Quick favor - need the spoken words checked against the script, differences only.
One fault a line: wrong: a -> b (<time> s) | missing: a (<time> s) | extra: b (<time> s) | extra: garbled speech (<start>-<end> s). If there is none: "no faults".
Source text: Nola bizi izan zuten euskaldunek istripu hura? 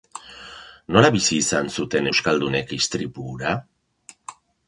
no faults